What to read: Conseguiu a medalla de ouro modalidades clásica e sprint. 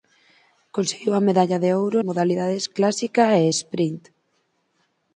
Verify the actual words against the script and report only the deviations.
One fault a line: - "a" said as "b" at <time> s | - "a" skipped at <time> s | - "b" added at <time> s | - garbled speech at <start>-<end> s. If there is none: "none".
none